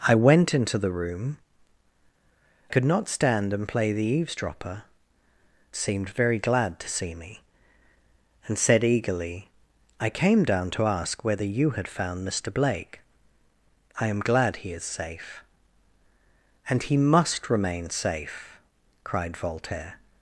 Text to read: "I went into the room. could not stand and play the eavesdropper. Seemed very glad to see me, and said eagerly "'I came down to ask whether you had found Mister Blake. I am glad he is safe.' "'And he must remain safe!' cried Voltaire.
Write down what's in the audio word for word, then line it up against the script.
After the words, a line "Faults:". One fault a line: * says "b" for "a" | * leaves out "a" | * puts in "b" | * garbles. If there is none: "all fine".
"I went into the room. could not stand and play the eavesdropper. Seemed very glad to see me, and said eagerly "'I came down to ask whether you had found Mister Blake. I am glad he is safe.' "'And he must remain safe!' cried Voltaire.
Faults:
all fine